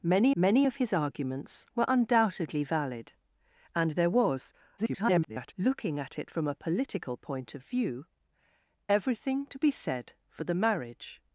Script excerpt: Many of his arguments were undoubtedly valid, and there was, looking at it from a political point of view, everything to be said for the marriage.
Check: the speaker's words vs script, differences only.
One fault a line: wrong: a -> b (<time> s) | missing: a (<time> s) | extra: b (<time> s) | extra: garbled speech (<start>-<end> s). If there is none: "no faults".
extra: many (0.4 s)
extra: garbled speech (4.8-5.5 s)